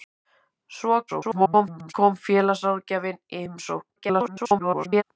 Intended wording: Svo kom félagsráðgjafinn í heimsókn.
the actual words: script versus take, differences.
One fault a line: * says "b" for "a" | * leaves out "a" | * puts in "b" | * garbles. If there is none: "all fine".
* garbles
* garbles